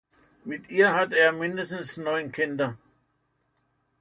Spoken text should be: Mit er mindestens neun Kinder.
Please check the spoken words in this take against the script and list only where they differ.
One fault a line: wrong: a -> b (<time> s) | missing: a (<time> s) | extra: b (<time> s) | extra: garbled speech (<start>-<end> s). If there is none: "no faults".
extra: ihr hatte (0.7 s)